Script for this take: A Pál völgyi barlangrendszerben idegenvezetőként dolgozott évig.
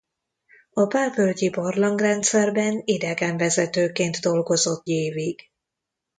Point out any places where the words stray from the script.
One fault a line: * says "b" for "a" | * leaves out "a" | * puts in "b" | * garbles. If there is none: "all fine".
all fine